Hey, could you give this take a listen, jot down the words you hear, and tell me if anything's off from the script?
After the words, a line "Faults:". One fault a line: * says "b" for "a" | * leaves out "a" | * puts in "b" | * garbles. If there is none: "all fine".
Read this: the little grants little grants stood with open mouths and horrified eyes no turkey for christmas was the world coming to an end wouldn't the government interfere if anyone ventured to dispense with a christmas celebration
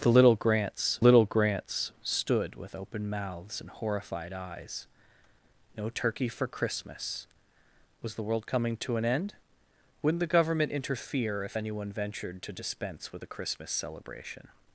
the little grants little grants stood with open mouths and horrified eyes no turkey for christmas was the world coming to an end wouldn't the government interfere if anyone ventured to dispense with a christmas celebration
Faults:
all fine